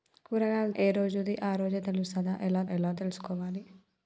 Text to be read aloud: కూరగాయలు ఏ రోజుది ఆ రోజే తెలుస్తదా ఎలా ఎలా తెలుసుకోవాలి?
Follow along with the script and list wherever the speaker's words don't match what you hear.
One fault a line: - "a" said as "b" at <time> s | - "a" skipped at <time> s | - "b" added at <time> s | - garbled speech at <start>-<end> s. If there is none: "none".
none